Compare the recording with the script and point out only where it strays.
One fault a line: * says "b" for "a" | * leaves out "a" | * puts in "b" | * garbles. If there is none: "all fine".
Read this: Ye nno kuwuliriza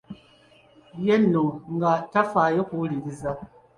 * puts in "nga tafaayo"